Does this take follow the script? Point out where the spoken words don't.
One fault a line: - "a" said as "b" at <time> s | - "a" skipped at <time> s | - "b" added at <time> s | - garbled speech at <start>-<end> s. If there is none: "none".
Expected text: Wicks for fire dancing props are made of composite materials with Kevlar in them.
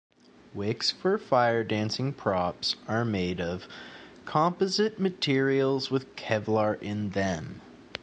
none